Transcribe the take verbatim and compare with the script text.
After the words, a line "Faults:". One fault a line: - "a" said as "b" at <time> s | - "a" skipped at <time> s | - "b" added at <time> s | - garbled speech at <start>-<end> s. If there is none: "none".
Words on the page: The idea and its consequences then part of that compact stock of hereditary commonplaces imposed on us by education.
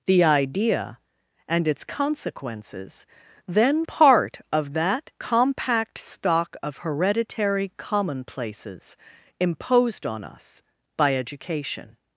The idea and its consequences then part of that compact stock of hereditary commonplaces imposed on us by education.
Faults:
none